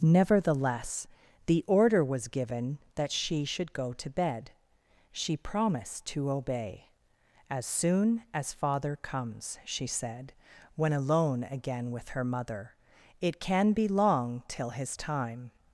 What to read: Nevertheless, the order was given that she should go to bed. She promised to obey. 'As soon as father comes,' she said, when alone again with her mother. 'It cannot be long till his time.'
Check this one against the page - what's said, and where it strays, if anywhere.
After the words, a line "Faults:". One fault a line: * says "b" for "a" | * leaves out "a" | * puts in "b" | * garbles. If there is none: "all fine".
Nevertheless, the order was given that she should go to bed. She promised to obey. 'As soon as father comes,' she said, when alone again with her mother. 'It can be long till his time.'
Faults:
* says "can" for "cannot"